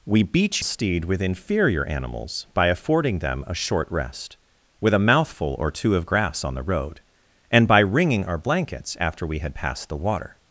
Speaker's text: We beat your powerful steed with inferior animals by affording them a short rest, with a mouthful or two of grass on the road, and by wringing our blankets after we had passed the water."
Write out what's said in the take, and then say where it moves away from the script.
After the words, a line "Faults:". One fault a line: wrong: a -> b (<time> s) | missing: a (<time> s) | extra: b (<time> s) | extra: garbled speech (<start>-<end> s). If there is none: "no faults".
We beat steed with inferior animals by affording them a short rest, with a mouthful or two of grass on the road, and by wringing our blankets after we had passed the water."
Faults:
missing: your powerful (0.6 s)